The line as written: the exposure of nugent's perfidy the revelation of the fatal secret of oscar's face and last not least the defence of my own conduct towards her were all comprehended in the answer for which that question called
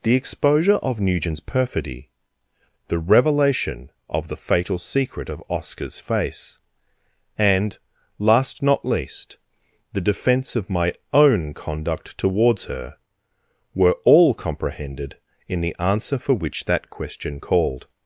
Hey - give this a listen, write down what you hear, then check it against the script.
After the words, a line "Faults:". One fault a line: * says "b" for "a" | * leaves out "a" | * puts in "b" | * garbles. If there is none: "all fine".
the exposure of nugent's perfidy the revelation of the fatal secret of oscar's face and last not least the defence of my own conduct towards her were all comprehended in the answer for which that question called
Faults:
all fine